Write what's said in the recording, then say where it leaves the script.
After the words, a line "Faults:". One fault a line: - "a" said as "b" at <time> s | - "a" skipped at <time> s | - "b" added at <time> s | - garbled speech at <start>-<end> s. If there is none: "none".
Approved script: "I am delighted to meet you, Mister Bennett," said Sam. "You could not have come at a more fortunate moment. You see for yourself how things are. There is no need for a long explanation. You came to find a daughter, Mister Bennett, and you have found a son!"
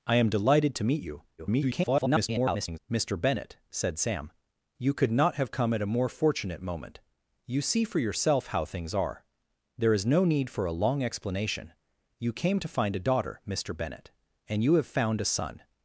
"I am delighted to meet you, [garbled] Mister Bennett," said Sam. "You could not have come at a more fortunate moment. You see for yourself how things are. There is no need for a long explanation. You came to find a daughter, Mister Bennett, and you have found a son!"
Faults:
- garbled speech at 1.4-2.8 s